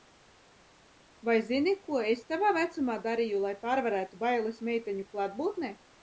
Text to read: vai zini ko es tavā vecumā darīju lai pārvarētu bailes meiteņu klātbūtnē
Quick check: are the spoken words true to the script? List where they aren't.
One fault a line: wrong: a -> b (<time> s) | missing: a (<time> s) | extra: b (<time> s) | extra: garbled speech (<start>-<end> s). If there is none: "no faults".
no faults